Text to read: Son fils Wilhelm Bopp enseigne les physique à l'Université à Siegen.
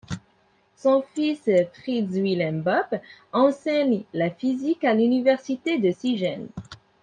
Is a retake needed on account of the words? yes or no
yes